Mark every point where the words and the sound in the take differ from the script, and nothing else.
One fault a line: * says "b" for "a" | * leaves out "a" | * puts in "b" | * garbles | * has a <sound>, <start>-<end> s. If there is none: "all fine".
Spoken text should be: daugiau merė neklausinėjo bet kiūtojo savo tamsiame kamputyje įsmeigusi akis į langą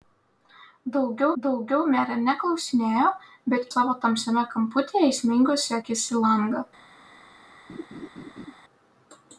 * puts in "daugiau"
* leaves out "kiūtojo"
* has a laugh, 7.7-8.5 s